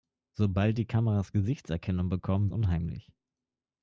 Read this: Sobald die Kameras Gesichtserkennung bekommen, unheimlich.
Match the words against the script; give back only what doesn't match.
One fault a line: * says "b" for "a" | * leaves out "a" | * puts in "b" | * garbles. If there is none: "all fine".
all fine